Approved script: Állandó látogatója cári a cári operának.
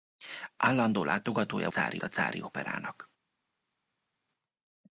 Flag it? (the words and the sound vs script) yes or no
no